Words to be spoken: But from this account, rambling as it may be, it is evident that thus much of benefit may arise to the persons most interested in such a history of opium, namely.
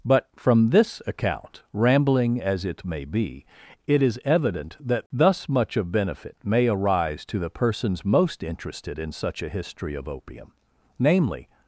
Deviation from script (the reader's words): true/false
false